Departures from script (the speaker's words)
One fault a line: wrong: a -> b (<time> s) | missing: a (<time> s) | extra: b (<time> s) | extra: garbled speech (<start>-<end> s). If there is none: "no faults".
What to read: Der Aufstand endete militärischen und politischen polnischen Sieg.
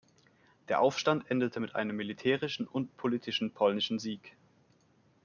extra: mit einem (1.6 s)